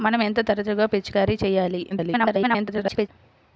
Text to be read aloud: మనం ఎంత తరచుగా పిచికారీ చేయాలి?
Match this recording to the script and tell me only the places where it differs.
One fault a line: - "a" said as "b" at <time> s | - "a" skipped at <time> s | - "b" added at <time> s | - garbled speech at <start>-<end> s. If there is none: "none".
- garbled speech at 1.9-3.1 s